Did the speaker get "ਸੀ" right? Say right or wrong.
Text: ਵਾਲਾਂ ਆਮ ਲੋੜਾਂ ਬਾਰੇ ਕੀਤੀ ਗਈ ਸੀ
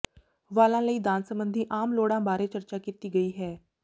wrong